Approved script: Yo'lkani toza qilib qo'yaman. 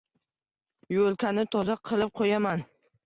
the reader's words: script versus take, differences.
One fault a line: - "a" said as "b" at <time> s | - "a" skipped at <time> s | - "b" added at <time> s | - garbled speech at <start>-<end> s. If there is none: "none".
none